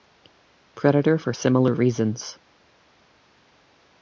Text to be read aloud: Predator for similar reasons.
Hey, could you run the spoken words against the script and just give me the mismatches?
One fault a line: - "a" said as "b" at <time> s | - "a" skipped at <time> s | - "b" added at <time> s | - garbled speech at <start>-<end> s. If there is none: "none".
none